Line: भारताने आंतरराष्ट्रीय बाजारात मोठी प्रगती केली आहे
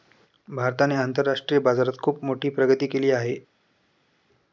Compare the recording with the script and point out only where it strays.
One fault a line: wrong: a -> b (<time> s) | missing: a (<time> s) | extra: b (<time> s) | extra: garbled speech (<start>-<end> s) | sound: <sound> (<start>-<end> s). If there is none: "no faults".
extra: खुप (2.0 s)